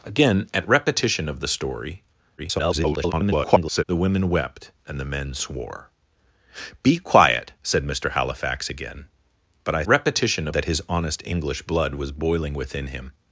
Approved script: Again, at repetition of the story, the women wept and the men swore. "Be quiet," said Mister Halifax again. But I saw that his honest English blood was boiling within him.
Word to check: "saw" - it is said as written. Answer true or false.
false